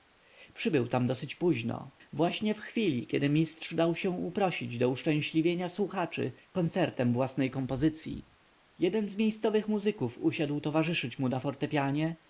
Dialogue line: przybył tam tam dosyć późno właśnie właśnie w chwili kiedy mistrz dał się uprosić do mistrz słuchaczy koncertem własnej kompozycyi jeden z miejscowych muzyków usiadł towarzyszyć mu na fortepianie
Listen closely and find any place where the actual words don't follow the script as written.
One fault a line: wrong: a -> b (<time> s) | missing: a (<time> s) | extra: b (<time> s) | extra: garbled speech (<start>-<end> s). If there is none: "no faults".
missing: tam (1.1 s)
missing: właśnie (2.5 s)
wrong: mistrz -> uszczęśliwienia (4.9 s)